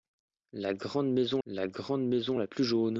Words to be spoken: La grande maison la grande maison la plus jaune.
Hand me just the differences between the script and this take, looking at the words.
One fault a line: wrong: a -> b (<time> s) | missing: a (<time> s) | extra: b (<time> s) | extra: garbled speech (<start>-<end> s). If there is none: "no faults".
no faults